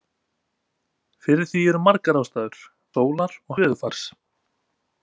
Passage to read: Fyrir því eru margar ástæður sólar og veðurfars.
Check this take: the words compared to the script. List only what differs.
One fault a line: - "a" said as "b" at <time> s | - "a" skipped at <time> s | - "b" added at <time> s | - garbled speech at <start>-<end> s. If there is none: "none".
none